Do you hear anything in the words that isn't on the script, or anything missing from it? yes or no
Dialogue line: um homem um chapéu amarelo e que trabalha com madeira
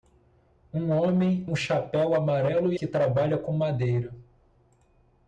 no